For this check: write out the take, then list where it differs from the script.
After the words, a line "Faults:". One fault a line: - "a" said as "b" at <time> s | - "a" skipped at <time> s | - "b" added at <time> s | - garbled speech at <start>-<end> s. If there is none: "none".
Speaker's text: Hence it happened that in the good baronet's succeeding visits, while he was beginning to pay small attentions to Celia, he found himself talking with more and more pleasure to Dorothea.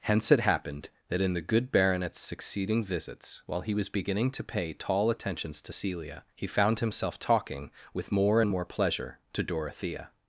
Hence it happened that in the good baronet's succeeding visits, while he was beginning to pay tall attentions to Celia, he found himself talking with more and more pleasure to Dorothea.
Faults:
- "small" said as "tall" at 4.7 s